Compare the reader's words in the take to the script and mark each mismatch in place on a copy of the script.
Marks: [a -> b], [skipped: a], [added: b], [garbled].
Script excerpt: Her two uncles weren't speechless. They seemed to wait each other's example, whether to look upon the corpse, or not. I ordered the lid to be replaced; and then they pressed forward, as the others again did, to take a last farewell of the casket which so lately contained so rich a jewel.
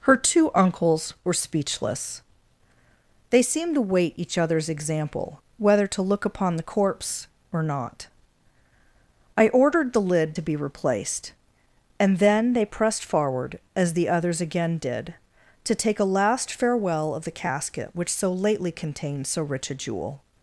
Her two uncles [weren't -> were] speechless. They seemed to wait each other's example, whether to look upon the corpse, or not. I ordered the lid to be replaced; and then they pressed forward, as the others again did, to take a last farewell of the casket which so lately contained so rich a jewel.